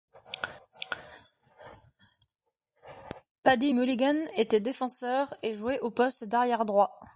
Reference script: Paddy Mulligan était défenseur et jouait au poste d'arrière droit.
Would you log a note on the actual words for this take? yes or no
no